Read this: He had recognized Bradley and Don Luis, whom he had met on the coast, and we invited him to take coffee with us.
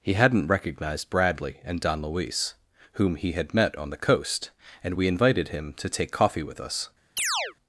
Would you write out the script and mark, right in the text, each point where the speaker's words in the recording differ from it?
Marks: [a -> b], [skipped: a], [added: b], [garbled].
He [had -> hadn't] recognized Bradley and Don Luis, whom he had met on the coast, and we invited him to take coffee with us.